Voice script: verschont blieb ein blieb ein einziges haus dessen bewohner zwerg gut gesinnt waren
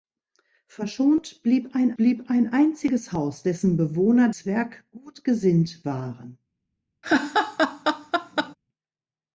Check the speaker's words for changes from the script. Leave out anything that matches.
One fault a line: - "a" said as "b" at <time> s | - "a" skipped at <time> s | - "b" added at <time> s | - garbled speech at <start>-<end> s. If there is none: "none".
none